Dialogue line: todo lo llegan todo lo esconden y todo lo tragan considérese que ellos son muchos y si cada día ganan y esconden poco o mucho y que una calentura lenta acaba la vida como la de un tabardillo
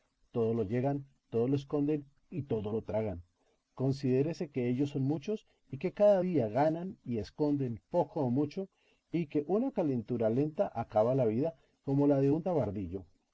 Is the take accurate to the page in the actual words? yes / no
no